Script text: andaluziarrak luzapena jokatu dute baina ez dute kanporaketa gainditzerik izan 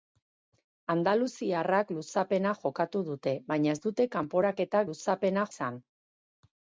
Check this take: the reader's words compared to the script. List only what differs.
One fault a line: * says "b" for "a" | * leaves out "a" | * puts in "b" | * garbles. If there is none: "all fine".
* says "luzapena" for "gainditzerik"